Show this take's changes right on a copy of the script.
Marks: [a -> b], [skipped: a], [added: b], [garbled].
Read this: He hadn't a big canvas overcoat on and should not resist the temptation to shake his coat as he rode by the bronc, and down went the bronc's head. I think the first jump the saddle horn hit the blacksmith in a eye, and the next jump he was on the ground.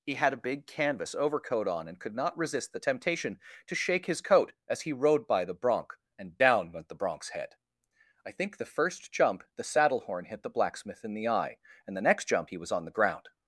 He [hadn't -> had] a big canvas overcoat on and [should -> could] not resist the temptation to shake his coat as he rode by the bronc, and down went the bronc's head. I think the first jump the saddle horn hit the blacksmith in [a -> the] eye, and the next jump he was on the ground.